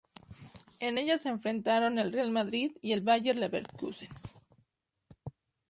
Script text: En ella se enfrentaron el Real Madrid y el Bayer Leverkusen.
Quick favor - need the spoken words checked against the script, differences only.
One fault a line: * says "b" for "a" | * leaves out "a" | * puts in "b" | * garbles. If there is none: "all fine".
all fine